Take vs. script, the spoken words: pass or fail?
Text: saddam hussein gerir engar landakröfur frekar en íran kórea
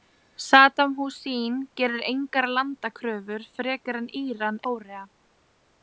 pass